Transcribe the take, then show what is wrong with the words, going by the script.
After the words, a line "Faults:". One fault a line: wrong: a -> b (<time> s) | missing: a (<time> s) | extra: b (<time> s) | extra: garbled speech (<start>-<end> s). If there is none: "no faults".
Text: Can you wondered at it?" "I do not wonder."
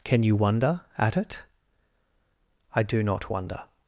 Can you wonder at it?" "I do not wonder."
Faults:
wrong: wondered -> wonder (0.3 s)